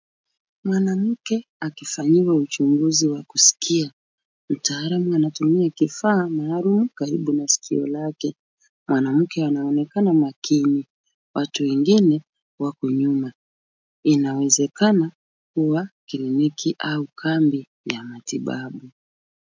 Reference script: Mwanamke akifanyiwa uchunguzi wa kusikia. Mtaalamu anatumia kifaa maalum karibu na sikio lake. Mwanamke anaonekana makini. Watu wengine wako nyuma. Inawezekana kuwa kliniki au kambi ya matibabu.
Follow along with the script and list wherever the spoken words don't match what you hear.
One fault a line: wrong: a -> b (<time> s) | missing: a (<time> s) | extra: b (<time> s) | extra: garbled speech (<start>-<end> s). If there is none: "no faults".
no faults